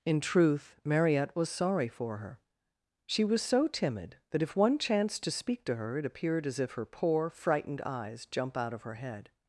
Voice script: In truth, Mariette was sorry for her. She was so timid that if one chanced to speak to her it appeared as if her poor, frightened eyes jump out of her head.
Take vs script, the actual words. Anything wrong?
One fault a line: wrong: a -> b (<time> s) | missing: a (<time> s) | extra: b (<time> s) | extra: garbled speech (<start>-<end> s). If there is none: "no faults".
no faults